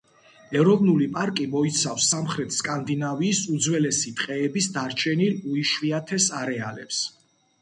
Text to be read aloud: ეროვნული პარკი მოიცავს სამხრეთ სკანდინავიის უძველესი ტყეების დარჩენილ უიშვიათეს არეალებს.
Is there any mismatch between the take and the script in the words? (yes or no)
no